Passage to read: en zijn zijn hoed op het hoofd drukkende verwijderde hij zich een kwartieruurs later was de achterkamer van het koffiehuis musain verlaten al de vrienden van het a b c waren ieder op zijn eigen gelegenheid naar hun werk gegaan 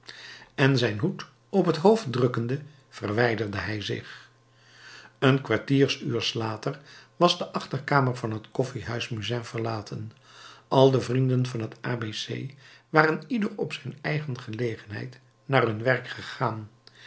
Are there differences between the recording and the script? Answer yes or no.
yes